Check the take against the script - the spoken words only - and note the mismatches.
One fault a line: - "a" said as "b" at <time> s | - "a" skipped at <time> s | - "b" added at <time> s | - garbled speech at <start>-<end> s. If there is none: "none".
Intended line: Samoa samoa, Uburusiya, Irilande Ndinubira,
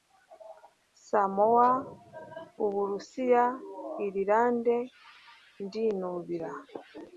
- "samoa" skipped at 1.7 s